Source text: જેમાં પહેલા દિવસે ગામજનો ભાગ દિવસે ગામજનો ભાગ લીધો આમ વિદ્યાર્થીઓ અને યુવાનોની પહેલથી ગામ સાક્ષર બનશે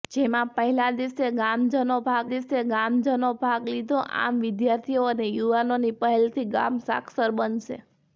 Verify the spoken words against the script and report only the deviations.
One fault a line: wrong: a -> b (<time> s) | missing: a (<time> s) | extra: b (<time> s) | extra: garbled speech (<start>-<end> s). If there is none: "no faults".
no faults